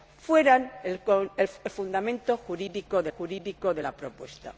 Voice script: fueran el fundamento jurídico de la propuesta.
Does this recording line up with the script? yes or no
no